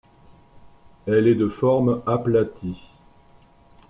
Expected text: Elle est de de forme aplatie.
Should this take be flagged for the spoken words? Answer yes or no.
yes